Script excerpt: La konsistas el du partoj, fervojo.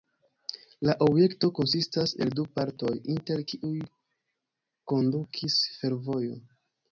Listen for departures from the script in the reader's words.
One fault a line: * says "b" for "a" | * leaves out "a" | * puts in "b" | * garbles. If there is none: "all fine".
* puts in "objekto"
* puts in "inter kiuj kondukis"